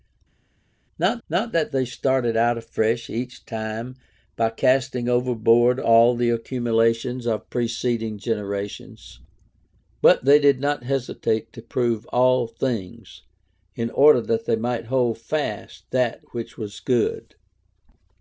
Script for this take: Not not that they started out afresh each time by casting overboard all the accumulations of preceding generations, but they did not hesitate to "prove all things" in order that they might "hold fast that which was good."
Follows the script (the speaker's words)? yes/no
yes